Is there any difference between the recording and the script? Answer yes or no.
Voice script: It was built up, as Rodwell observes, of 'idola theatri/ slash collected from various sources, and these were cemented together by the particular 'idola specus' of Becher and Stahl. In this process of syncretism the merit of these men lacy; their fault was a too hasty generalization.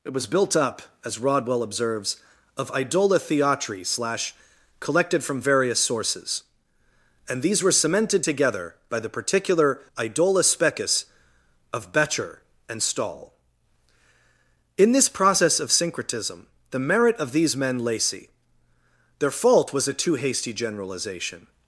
no